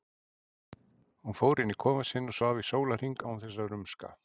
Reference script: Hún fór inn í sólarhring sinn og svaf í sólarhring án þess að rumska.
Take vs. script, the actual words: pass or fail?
fail